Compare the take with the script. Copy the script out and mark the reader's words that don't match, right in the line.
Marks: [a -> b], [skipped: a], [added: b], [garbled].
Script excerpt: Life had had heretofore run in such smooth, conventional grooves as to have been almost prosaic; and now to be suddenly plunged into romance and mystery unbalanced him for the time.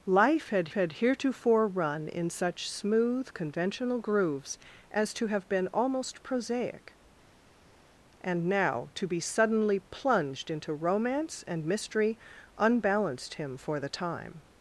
Life had had heretofore run in such smooth, conventional grooves as to have been almost prosaic; and now to be suddenly plunged into romance and mystery unbalanced him for the time.